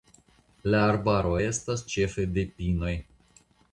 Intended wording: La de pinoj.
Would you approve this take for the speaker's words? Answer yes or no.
no